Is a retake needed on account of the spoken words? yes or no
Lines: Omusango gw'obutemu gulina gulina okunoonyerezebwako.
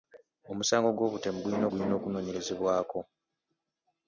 no